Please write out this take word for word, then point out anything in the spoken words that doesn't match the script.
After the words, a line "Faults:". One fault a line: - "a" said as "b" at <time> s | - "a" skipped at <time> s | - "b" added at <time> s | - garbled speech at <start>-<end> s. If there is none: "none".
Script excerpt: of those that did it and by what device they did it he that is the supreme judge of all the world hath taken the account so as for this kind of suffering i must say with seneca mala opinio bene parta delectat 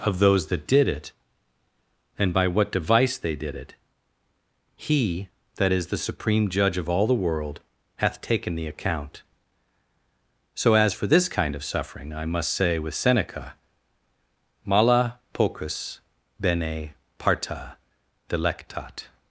of those that did it and by what device they did it he that is the supreme judge of all the world hath taken the account so as for this kind of suffering i must say with seneca mala pocus bene parta delectat
Faults:
- "opinio" said as "pocus" at 15.3 s